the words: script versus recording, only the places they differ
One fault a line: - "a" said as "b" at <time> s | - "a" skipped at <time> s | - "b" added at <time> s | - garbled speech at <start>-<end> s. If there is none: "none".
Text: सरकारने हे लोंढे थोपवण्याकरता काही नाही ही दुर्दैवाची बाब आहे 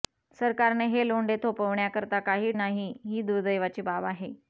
none